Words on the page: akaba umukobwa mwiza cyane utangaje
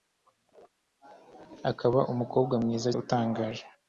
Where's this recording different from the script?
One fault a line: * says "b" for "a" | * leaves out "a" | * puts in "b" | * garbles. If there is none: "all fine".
* leaves out "cyane"